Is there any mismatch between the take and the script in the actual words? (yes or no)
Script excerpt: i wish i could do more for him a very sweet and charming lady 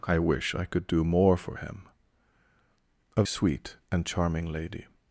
yes